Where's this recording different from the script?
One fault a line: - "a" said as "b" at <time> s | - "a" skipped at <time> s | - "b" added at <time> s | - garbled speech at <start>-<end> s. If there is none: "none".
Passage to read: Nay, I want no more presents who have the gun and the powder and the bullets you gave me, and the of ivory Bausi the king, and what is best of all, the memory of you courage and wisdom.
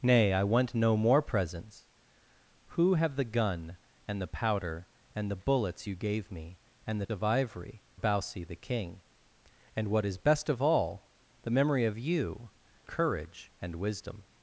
none